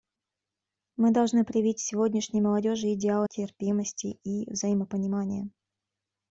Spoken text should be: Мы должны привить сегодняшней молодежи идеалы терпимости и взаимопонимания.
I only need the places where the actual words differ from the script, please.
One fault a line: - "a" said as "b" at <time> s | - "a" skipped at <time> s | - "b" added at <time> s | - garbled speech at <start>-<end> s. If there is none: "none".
none